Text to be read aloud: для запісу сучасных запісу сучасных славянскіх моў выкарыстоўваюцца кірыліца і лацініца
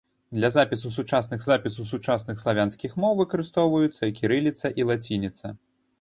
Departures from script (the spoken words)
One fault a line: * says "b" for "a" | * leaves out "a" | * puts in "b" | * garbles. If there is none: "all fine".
all fine